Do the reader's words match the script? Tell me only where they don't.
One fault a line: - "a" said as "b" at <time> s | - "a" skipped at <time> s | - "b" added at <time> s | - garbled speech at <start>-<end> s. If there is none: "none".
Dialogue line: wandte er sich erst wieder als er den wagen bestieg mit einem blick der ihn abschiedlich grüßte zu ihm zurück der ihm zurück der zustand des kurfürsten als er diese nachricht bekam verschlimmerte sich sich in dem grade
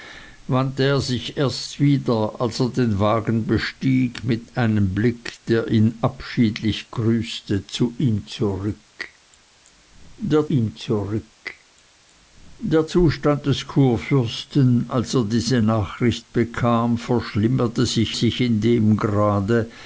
none